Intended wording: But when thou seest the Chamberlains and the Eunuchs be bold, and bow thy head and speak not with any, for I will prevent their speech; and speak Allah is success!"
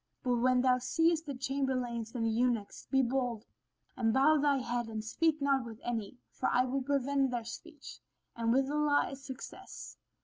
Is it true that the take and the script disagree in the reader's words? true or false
true